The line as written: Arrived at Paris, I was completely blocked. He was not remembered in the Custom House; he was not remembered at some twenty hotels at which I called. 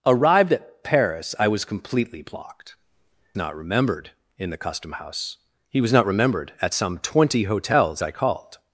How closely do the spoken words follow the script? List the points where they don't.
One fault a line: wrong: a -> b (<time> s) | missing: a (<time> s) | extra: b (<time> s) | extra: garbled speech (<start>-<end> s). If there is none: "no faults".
missing: He was (2.8 s)
missing: at which (8.0 s)